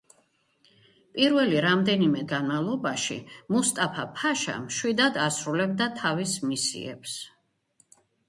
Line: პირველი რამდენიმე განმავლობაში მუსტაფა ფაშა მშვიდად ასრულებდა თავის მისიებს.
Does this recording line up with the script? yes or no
yes